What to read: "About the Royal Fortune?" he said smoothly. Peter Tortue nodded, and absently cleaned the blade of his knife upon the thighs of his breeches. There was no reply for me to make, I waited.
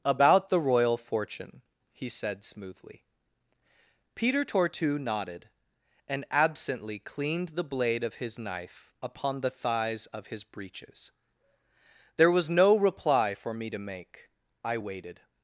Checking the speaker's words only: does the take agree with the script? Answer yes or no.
yes